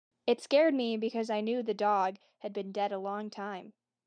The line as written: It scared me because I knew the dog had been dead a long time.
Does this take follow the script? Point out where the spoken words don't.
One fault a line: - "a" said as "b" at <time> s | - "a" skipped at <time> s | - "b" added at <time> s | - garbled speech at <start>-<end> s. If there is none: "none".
none